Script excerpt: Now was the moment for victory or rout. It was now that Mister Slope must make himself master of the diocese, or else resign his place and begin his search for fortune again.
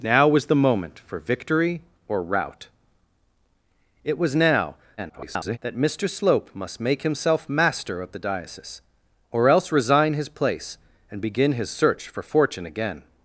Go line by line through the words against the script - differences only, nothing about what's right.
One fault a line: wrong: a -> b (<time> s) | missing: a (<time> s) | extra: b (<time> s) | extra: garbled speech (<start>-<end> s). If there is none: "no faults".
extra: garbled speech (5.0-5.6 s)